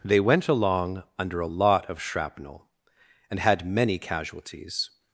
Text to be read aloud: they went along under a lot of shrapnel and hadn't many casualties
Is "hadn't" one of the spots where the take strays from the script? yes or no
yes